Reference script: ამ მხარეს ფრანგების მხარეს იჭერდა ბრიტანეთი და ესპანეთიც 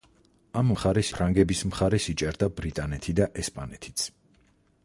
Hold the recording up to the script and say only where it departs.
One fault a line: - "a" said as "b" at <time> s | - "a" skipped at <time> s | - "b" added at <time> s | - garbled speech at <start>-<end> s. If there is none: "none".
none